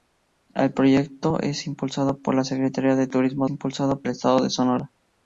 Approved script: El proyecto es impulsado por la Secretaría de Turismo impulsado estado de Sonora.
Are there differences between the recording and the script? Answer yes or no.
no